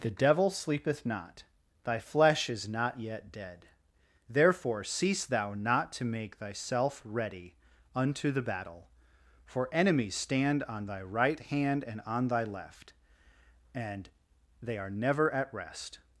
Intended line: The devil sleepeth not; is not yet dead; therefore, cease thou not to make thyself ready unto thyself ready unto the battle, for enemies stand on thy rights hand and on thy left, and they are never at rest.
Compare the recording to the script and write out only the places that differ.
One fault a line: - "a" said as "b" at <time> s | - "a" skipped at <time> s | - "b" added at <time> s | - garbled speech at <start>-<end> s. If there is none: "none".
- "thy flesh" added at 1.8 s
- "thyself ready unto" skipped at 8.3 s
- "rights" said as "right" at 11.0 s